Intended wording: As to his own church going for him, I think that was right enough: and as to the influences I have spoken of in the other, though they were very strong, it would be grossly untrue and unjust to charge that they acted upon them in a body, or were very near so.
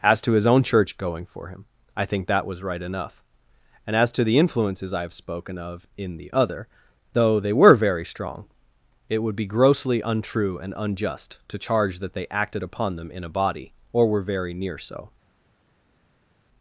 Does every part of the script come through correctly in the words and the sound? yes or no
yes